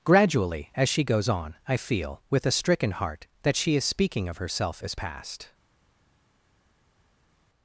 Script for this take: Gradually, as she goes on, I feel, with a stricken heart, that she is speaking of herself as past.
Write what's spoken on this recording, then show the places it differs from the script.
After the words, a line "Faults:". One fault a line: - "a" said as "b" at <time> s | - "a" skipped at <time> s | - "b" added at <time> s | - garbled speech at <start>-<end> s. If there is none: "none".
Gradually, as she goes on, I feel, with a stricken heart, that she is speaking of herself as past.
Faults:
none